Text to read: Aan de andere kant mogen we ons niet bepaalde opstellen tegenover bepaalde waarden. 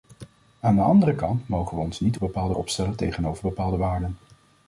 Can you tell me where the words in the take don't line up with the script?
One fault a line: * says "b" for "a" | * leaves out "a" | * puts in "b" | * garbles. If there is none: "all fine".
all fine